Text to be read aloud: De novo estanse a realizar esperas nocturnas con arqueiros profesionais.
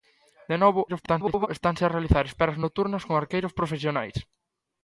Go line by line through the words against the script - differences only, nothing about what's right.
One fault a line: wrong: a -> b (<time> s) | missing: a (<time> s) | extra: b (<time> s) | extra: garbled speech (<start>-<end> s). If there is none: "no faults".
extra: garbled speech (0.9-1.5 s)